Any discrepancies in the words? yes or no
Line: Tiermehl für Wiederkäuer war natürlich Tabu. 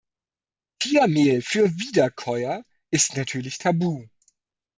yes